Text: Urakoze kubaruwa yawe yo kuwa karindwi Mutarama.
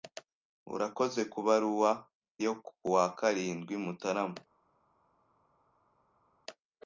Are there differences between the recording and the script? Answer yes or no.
yes